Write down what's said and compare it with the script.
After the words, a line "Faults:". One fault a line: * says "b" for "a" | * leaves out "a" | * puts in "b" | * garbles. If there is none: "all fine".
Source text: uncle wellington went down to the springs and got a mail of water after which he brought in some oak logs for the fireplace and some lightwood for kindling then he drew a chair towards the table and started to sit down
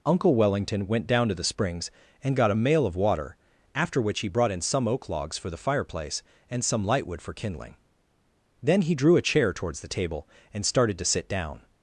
uncle wellington went down to the springs and got a mail of water after which he brought in some oak logs for the fireplace and some lightwood for kindling then he drew a chair towards the table and started to sit down
Faults:
all fine